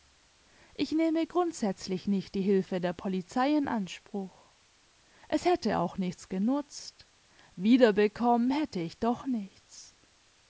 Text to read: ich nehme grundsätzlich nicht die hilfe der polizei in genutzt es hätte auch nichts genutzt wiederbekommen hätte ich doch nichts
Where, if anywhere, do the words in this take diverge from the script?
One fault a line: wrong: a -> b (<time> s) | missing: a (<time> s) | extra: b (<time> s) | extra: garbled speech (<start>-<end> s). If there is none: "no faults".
wrong: genutzt -> anspruch (3.7 s)